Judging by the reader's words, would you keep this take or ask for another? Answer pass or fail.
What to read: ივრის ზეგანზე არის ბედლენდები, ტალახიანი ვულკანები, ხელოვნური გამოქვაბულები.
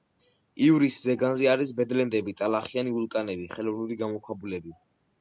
pass